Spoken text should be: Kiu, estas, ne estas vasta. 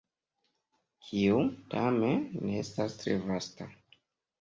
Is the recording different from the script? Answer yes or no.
yes